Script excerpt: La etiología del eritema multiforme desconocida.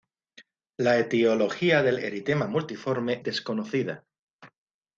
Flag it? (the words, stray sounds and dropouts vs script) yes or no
no